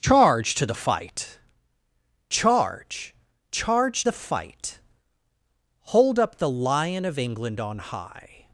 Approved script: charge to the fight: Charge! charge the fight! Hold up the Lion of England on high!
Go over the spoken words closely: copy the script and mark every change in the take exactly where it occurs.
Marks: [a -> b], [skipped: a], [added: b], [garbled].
charge to the fight: Charge! charge the fight! Hold up the Lion of England on high!